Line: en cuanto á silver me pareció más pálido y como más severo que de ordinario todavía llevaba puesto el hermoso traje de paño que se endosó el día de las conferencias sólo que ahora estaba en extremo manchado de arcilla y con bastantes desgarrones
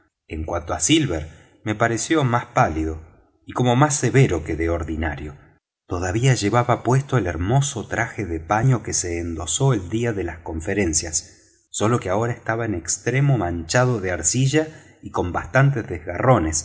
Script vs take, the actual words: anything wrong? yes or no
no